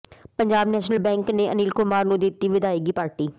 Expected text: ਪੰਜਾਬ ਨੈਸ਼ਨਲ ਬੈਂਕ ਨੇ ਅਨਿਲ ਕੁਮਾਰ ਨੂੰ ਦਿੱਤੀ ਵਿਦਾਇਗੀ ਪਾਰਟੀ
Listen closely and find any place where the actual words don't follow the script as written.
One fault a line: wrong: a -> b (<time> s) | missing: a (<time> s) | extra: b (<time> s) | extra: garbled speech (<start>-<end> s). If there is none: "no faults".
no faults